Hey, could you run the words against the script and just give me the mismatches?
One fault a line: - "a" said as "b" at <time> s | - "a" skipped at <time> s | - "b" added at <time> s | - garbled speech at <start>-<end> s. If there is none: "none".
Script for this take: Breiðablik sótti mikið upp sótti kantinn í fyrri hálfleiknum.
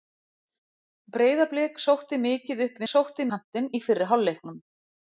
none